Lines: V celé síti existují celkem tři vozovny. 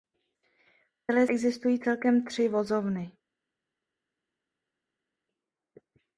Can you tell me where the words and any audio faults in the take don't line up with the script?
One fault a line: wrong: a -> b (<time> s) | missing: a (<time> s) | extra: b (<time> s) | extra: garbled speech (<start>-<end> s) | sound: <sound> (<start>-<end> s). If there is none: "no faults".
missing: síti (1.3 s)